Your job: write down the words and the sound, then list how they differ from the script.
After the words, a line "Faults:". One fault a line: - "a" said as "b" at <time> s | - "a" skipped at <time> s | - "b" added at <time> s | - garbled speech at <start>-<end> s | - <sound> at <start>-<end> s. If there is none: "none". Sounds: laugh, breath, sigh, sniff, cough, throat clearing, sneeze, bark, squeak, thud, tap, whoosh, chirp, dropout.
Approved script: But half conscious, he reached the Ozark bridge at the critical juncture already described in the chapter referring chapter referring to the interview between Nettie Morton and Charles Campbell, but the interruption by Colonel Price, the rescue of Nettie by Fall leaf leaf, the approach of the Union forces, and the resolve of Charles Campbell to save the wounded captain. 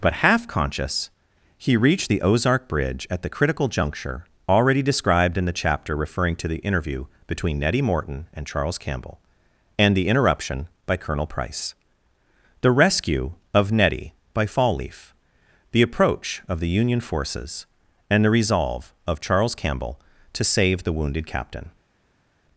But half conscious, he reached the Ozark bridge at the critical juncture already described in the chapter referring to the interview between Nettie Morton and Charles Campbell, and the interruption by Colonel Price, the rescue of Nettie by Fall leaf, the approach of the Union forces, and the resolve of Charles Campbell to save the wounded captain.
Faults:
- "chapter referring" skipped at 6.3 s
- "but" said as "and" at 9.8 s
- "leaf" skipped at 15.1 s